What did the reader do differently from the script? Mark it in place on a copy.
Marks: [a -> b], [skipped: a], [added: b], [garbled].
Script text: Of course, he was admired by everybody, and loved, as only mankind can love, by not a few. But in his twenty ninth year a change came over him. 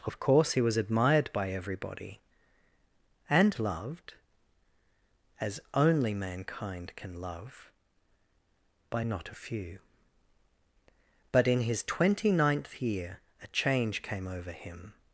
Of course, he was admired by everybody, and loved, as only mankind can love, by not a few. But in his twenty ninth year a change came over him.